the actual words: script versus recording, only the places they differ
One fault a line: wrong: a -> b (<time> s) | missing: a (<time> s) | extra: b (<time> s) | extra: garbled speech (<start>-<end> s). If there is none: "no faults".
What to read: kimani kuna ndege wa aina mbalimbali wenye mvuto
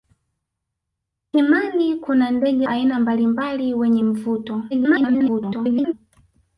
missing: wa (2.7 s)
extra: garbled speech (4.7-5.9 s)